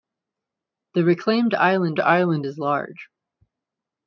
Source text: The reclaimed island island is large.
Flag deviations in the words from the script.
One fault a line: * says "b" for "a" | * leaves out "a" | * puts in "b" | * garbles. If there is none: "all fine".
all fine